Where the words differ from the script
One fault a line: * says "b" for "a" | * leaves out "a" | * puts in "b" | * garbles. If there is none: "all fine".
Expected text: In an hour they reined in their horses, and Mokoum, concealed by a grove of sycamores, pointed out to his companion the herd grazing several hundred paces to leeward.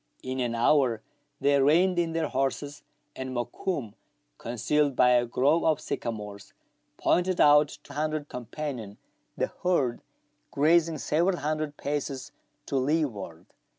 * says "hundred" for "his"